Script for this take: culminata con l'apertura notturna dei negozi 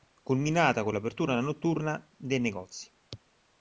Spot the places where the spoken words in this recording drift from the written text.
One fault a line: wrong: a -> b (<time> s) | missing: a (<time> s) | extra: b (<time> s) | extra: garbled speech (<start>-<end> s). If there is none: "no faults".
no faults